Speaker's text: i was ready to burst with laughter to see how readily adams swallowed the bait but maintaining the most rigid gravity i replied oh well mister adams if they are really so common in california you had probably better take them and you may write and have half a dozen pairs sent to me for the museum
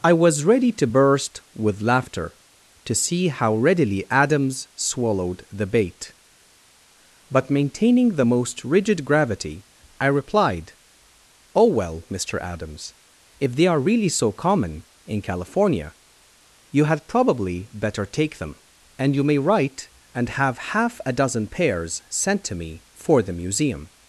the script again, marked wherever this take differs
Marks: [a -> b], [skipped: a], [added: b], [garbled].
i was ready to burst with laughter to see how readily adams swallowed the bait but maintaining the most rigid gravity i replied oh well mister adams if they are really so common in california you had probably better take them and you may write and have half a dozen pairs sent to me for the museum